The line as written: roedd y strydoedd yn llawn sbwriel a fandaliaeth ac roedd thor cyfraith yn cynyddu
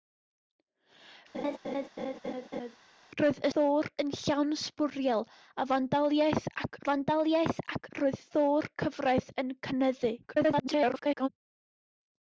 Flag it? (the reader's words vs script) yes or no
yes